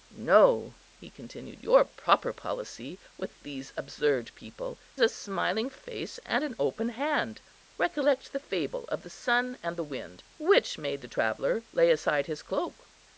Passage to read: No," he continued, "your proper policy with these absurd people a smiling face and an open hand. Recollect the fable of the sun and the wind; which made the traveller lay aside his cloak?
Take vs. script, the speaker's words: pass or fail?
pass